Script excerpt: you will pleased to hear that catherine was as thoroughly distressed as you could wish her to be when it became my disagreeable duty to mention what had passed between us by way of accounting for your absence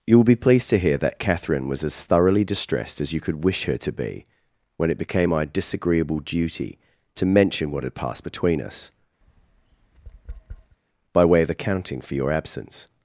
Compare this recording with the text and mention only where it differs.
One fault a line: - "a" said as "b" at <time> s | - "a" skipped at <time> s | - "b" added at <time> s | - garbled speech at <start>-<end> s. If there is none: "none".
- "be" added at 0.2 s